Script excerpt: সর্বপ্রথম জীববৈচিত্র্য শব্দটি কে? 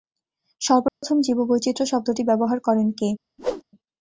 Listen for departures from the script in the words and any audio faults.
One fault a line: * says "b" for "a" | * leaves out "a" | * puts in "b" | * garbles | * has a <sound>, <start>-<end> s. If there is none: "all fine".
* has a dropout, 0.9-1.0 s
* puts in "ব্যবহার করেন"
* has a whoosh, 3.4-3.6 s